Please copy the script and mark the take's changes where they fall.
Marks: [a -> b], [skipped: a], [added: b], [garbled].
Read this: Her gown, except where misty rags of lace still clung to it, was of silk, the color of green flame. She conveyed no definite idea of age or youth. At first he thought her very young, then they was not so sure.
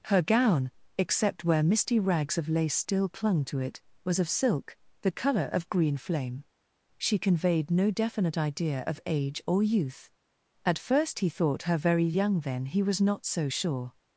Her gown, except where misty rags of lace still clung to it, was of silk, the color of green flame. She conveyed no definite idea of age or youth. At first he thought her very young, then [they -> he] was not so sure.